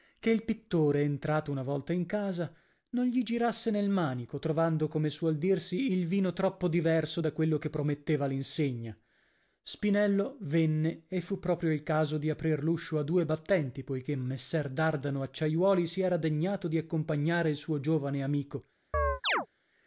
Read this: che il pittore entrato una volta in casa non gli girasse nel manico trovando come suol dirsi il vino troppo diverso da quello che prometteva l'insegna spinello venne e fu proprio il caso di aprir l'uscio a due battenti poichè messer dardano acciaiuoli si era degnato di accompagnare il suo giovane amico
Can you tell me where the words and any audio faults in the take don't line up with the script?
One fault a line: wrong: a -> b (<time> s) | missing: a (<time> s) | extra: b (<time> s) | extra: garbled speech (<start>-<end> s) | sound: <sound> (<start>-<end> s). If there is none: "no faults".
sound: chirp (18.9-19.5 s)